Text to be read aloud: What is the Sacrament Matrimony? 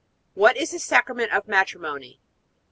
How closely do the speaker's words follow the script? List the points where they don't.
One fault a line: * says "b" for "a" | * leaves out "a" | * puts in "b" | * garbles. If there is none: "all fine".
* puts in "of"